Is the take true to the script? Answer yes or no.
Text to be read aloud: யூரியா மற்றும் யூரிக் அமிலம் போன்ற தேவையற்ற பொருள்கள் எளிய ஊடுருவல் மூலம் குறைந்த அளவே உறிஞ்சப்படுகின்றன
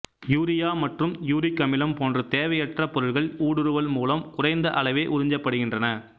no